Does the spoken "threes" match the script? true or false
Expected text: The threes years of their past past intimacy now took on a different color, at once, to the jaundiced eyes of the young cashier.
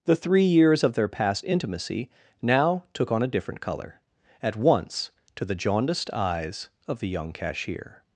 false